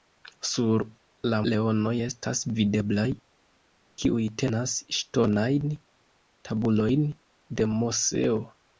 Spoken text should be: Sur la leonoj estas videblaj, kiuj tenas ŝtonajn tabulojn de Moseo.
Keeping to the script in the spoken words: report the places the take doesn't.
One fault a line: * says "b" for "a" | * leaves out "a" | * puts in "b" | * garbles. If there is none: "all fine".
all fine